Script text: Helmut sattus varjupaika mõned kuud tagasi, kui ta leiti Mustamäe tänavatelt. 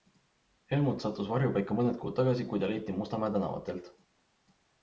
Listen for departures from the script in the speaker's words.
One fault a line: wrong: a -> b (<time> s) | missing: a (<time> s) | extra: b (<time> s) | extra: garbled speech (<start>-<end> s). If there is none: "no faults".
no faults